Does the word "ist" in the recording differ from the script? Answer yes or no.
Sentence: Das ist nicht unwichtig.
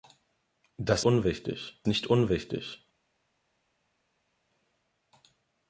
yes